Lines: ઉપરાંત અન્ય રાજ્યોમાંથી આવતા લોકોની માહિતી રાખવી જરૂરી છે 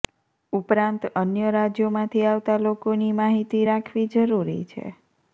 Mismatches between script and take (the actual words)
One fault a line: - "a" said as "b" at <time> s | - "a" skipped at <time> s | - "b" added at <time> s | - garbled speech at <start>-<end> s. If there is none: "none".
none